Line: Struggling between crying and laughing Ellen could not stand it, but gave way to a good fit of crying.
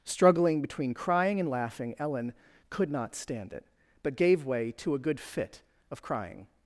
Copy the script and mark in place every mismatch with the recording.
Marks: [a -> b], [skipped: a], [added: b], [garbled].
Struggling between crying and laughing Ellen could not stand it, but gave way to a good fit of crying.